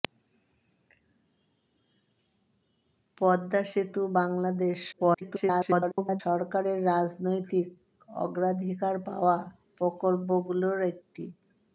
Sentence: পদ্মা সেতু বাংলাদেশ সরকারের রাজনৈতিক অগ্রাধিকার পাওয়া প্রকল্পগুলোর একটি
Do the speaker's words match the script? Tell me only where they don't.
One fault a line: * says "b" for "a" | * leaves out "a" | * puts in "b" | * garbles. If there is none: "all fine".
* garbles